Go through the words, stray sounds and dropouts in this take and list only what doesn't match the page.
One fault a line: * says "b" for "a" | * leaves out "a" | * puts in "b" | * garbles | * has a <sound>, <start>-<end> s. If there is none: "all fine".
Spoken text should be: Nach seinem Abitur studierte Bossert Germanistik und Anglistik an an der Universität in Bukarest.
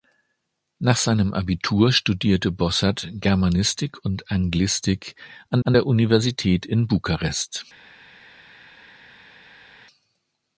all fine